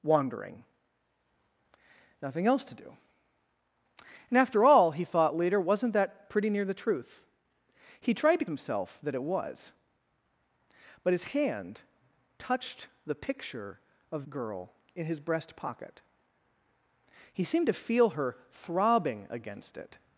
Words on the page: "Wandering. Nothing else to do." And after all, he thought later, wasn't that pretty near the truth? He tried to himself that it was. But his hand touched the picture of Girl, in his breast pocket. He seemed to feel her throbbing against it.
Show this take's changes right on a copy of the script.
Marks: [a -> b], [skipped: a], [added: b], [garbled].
"Wandering. Nothing else to do." And after all, he thought later, wasn't that pretty near the truth? He tried to himself that it was. But his hand touched the picture of Girl, in his breast pocket. He seemed to feel her throbbing against it.